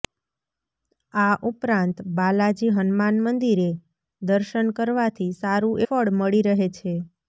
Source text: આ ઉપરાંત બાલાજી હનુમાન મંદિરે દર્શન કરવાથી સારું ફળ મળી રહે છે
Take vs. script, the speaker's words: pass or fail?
pass